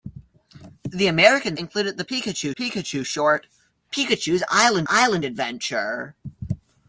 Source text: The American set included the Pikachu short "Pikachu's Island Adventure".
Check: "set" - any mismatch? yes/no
yes